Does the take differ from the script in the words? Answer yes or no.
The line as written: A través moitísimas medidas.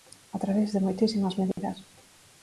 yes